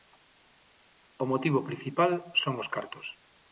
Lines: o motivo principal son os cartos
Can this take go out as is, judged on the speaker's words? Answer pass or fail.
pass